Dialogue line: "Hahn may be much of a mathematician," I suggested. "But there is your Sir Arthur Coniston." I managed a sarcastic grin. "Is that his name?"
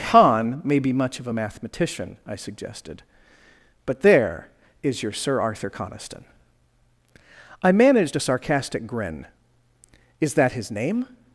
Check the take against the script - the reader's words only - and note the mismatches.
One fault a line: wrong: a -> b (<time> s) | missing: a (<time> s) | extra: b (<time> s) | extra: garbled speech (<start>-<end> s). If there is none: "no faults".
no faults